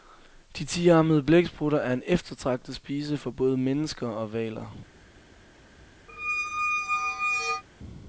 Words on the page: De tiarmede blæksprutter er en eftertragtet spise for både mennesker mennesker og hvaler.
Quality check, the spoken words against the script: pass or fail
fail